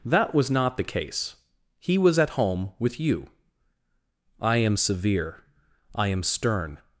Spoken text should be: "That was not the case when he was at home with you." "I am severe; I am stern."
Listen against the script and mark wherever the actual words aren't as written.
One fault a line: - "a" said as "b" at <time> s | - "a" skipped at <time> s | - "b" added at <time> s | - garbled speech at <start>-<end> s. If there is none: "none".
- "when" skipped at 1.4 s